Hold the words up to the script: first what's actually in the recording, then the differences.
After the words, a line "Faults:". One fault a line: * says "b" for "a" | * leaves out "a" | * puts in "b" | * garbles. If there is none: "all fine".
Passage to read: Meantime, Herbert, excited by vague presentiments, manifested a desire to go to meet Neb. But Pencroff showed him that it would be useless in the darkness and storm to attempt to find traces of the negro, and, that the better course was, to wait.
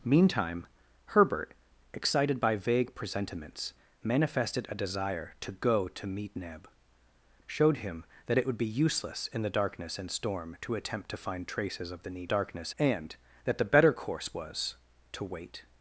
Meantime, Herbert, excited by vague presentiments, manifested a desire to go to meet Neb. Showed him that it would be useless in the darkness and storm to attempt to find traces of the darkness, and, that the better course was, to wait.
Faults:
* leaves out "But Pencroff"
* says "darkness" for "negro"